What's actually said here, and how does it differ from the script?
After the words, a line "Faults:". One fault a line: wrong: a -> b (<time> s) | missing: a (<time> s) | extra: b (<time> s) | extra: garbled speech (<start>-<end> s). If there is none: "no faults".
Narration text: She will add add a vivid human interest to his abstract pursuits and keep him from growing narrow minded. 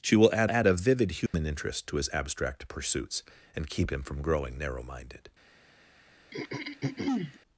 She will add add a vivid human interest to his abstract pursuits and keep him from growing narrow minded.
Faults:
no faults